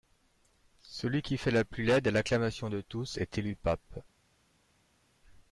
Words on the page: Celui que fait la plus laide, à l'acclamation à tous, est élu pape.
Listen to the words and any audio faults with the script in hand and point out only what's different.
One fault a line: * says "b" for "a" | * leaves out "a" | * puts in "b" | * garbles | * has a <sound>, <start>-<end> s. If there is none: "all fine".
* says "qui" for "que"
* says "de" for "à"